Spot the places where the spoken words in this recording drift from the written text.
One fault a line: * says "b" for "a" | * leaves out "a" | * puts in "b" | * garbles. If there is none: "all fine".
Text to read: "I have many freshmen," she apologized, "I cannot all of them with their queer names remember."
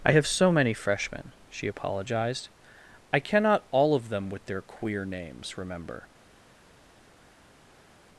* puts in "so"